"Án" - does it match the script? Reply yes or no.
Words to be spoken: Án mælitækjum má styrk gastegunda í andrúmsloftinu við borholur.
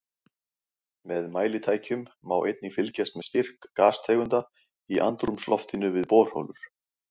no